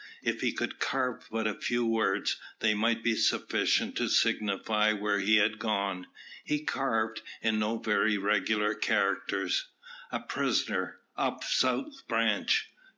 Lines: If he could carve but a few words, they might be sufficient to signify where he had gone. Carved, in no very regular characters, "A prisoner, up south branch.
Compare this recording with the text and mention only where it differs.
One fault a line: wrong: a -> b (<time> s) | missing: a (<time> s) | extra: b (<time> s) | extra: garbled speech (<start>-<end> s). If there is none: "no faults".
extra: He (6.4 s)